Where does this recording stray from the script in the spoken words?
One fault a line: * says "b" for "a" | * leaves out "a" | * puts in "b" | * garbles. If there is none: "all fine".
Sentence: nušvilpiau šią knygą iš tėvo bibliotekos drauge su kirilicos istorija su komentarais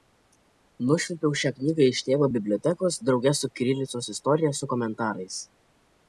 all fine